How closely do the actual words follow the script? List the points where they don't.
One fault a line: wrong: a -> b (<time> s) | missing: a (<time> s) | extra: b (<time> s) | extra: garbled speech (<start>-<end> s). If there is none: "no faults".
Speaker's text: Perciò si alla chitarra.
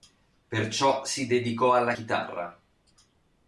extra: dedicò (1.3 s)